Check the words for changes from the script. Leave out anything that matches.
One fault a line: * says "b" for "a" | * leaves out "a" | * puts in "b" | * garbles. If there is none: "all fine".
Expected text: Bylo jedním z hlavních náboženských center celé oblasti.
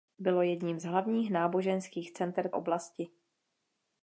* leaves out "celé"